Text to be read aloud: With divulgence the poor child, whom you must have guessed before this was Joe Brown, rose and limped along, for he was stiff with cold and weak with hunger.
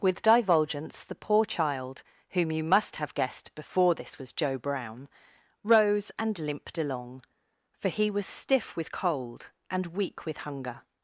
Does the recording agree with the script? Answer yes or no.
yes